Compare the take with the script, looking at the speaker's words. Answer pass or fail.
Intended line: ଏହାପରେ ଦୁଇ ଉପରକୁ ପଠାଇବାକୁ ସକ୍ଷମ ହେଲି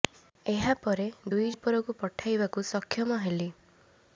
pass